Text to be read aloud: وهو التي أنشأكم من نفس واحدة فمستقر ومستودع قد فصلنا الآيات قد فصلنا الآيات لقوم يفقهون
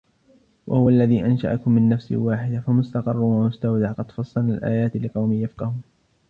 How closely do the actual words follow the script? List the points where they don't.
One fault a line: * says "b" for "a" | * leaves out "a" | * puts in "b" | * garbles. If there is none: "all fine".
* says "الذي" for "التي"
* leaves out "قد فصلنا الآيات"